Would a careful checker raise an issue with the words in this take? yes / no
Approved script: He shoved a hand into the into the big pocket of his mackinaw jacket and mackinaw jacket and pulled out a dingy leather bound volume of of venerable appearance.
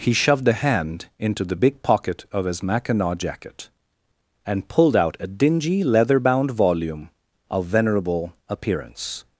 yes